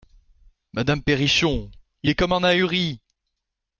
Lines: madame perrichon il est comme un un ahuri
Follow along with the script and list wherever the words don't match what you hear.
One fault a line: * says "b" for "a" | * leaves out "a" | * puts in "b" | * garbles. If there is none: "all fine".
* leaves out "un"